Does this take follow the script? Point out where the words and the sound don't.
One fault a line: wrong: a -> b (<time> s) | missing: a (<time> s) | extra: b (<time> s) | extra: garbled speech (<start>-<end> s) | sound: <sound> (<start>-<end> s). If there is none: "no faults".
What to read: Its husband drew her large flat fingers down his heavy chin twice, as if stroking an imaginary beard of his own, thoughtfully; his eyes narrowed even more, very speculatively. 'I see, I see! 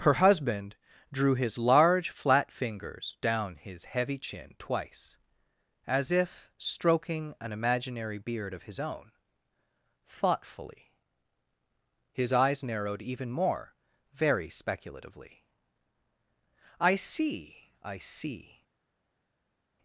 wrong: Its -> Her (0.0 s)
wrong: her -> his (1.4 s)